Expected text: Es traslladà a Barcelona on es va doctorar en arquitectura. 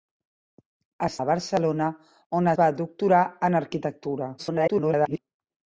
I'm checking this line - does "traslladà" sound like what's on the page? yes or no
no